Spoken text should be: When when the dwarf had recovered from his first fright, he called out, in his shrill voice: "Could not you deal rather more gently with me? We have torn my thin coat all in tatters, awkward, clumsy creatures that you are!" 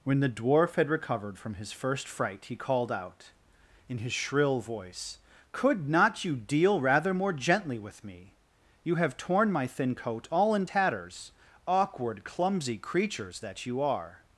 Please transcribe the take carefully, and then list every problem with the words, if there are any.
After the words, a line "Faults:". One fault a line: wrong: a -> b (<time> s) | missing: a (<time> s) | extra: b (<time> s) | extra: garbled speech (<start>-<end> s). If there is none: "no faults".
When the dwarf had recovered from his first fright, he called out, in his shrill voice: "Could not you deal rather more gently with me? You have torn my thin coat all in tatters, awkward, clumsy creatures that you are!"
Faults:
missing: when (0.2 s)
wrong: We -> You (8.8 s)